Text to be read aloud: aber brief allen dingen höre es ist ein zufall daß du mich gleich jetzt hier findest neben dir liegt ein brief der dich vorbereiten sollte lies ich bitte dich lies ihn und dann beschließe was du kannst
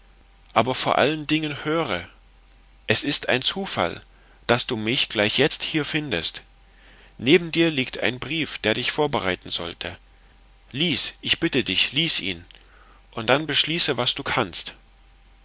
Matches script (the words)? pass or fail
fail